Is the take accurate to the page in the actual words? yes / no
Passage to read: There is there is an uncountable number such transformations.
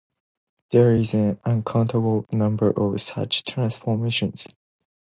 no